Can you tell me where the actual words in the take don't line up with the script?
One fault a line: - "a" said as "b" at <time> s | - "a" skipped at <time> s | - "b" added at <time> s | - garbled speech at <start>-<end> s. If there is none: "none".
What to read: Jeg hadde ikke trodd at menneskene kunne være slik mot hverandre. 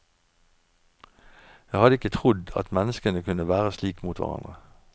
none